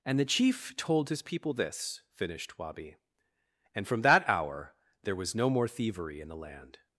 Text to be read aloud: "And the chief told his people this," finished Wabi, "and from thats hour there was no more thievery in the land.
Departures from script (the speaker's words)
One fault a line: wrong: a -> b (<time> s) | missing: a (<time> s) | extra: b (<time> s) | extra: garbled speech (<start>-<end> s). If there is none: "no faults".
wrong: thats -> that (4.0 s)